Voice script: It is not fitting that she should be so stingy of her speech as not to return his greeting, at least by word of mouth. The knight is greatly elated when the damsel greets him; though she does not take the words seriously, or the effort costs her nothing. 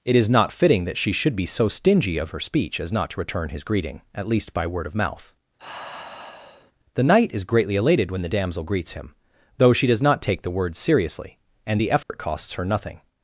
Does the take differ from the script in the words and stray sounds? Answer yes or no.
yes